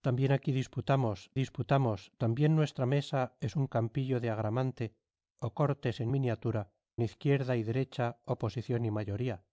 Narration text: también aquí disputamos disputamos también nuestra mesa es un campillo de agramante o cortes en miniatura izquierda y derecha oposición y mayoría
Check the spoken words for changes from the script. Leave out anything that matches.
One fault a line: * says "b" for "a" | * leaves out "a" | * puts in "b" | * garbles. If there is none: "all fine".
all fine